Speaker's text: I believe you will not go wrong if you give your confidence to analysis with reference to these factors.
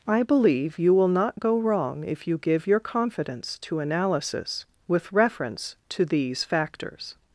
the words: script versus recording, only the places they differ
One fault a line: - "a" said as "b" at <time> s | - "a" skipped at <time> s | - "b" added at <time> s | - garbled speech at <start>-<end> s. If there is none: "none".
none